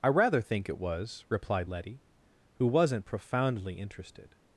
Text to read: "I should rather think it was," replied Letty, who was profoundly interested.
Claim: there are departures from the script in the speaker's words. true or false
true